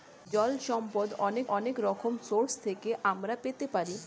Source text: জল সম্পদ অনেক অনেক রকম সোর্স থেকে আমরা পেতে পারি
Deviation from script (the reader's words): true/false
false